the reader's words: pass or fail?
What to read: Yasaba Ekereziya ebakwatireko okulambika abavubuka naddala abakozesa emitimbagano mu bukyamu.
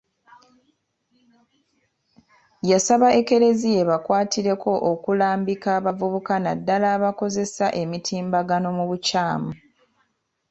pass